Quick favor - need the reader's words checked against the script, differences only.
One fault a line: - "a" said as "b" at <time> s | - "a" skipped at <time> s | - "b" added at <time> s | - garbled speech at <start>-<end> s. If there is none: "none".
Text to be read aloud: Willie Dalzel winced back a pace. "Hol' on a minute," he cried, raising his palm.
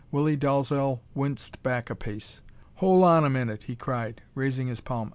none